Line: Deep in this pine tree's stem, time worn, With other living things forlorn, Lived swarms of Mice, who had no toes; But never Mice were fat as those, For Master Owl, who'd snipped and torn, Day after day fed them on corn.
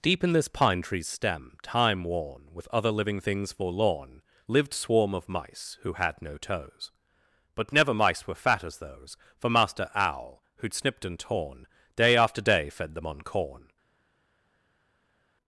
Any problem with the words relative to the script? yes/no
yes